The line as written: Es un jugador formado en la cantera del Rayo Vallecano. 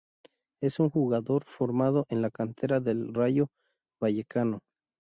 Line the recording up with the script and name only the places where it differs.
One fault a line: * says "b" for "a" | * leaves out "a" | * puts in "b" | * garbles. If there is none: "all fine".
all fine